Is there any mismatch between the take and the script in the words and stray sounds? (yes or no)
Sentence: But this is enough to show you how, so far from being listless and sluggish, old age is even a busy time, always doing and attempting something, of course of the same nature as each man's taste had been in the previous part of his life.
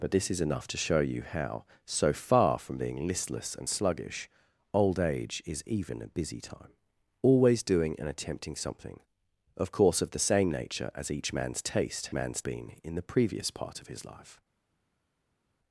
yes